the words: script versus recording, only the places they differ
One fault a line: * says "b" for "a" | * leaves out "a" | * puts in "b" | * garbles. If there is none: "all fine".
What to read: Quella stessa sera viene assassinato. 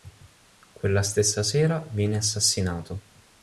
all fine